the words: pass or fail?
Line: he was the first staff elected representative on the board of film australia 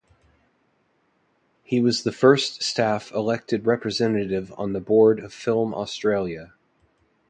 pass